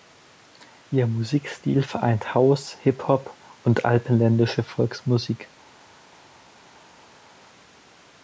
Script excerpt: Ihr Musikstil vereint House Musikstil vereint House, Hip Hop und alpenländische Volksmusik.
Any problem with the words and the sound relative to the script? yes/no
yes